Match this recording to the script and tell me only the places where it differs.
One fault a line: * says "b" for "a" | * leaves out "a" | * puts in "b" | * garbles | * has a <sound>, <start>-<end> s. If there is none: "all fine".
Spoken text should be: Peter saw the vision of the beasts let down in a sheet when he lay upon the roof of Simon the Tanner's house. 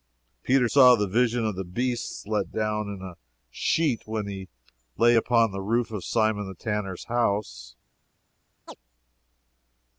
* has a chirp, 8.7-8.8 s